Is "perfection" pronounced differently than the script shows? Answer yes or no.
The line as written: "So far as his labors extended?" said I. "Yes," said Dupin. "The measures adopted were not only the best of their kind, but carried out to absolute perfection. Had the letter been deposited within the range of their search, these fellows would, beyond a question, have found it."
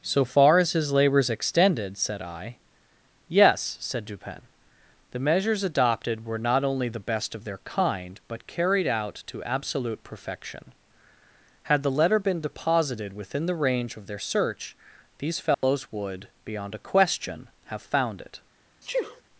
no